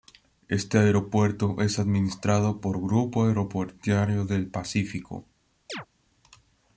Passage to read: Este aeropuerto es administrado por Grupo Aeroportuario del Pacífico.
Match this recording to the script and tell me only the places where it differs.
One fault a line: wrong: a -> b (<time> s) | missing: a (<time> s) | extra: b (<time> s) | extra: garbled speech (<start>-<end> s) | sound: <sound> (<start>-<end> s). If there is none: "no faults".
sound: chirp (5.7-5.9 s)